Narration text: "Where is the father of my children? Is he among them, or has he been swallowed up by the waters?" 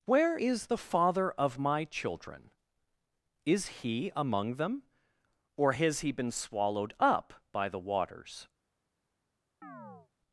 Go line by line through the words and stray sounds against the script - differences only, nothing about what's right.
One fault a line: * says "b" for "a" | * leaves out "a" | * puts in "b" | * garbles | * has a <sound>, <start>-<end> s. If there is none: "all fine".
* has a chirp, 9.6-10.1 s